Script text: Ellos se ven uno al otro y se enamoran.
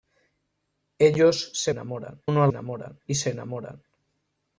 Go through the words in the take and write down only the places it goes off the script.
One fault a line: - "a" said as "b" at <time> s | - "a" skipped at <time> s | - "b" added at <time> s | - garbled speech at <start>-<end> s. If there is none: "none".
- "ven" said as "enamoran" at 1.7 s
- "otro" said as "enamoran" at 2.5 s